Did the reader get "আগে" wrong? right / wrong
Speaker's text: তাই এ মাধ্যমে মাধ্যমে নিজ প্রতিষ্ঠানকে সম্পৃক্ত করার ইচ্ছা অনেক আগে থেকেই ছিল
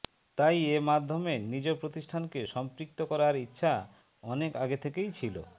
right